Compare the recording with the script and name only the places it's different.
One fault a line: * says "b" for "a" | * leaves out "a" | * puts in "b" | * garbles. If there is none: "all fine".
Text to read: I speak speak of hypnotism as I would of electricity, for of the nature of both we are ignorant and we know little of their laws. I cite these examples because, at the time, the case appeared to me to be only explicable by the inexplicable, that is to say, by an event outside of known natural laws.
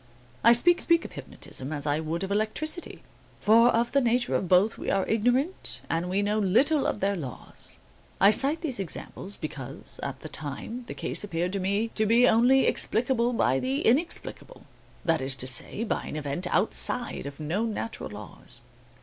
all fine